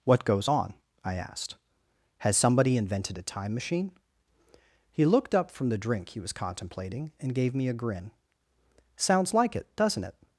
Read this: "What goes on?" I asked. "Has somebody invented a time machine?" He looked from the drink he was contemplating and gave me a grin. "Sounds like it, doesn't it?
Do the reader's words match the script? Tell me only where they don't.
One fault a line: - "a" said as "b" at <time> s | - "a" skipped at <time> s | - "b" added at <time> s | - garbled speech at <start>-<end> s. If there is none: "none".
- "up" added at 5.3 s